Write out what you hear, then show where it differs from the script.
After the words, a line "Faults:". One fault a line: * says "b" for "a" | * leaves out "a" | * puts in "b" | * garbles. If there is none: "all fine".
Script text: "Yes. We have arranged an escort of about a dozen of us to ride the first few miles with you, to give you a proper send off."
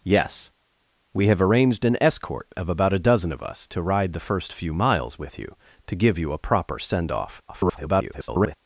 "Yes. We have arranged an escort of about a dozen of us to ride the first few miles with you, to give you a proper send off." [garbled]
Faults:
* garbles